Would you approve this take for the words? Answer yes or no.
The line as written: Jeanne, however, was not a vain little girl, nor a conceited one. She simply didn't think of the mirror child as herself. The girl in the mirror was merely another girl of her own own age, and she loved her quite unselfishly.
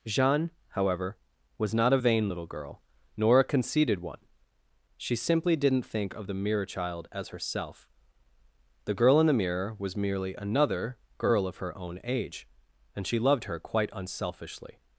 no